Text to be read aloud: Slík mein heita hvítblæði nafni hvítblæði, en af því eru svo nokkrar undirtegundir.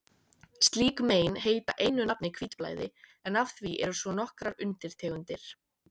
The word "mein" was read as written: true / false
true